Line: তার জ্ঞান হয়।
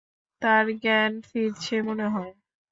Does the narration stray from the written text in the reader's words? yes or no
yes